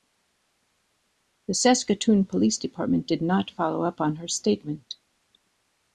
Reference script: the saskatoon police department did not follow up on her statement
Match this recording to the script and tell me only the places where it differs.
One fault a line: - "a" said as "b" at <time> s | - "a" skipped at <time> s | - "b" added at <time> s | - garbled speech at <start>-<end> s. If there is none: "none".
none